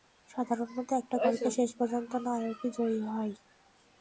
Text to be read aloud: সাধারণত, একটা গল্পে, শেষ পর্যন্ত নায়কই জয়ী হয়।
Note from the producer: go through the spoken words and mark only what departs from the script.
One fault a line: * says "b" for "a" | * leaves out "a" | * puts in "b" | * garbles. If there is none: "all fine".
all fine